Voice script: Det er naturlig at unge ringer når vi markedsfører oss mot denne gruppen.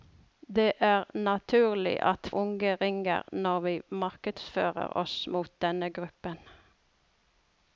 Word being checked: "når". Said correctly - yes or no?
yes